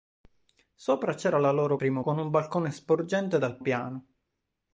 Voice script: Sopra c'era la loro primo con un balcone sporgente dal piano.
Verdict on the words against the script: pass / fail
pass